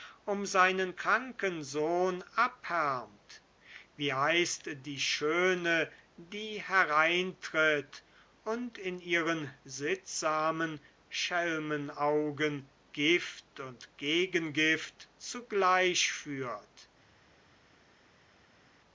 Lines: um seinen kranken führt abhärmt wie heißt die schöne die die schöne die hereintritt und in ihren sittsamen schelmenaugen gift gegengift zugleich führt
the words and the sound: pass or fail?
fail